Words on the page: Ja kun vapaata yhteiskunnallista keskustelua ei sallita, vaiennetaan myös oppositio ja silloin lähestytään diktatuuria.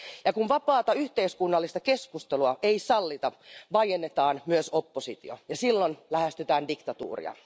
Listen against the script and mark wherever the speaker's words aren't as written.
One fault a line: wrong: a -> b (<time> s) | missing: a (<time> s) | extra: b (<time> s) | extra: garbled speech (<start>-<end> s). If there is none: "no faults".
no faults